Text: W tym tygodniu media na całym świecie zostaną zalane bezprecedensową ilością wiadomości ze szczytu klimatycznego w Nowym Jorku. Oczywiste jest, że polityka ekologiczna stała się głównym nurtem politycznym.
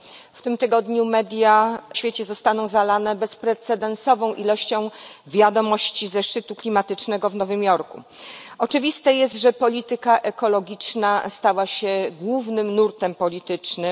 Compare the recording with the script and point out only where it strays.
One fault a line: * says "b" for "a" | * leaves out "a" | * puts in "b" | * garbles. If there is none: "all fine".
* leaves out "na całym"